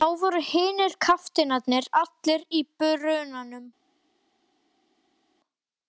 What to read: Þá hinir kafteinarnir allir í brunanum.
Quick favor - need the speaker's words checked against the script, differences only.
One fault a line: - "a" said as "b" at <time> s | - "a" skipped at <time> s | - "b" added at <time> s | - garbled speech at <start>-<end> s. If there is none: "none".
- "voru" added at 0.2 s